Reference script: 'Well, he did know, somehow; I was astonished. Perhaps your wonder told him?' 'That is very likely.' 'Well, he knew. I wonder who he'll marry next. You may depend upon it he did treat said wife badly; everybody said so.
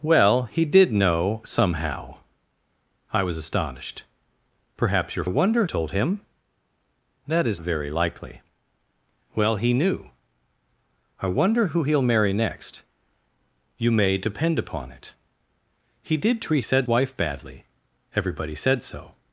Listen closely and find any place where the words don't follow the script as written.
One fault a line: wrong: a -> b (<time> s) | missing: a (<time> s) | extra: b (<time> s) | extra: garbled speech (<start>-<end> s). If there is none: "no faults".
no faults